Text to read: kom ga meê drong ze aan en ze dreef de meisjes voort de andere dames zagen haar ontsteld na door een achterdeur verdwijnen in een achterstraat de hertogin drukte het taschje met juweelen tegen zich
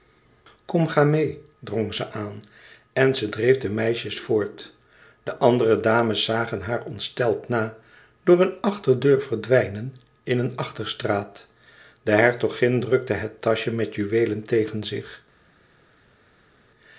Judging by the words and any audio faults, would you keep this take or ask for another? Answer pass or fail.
pass